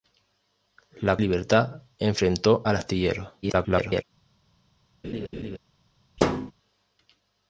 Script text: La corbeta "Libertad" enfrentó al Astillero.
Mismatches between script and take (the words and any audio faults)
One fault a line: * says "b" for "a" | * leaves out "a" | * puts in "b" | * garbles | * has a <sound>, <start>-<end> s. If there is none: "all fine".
* leaves out "corbeta"
* garbles
* has a laugh, 5.0-5.6 s
* has a thud, 6.2-6.5 s